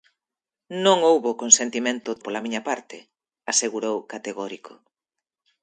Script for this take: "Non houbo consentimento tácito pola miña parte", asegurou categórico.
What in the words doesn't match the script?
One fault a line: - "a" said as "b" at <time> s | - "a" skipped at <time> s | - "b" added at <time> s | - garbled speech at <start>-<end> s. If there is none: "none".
- "tácito" skipped at 2.1 s